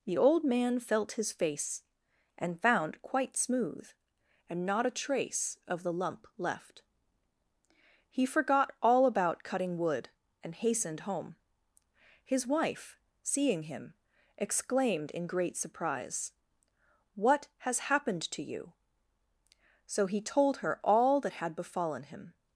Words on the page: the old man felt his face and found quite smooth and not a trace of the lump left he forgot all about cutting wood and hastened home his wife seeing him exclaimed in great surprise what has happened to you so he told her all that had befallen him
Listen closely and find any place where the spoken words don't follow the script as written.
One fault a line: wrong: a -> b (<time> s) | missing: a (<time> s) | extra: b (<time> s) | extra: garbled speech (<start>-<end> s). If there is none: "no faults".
no faults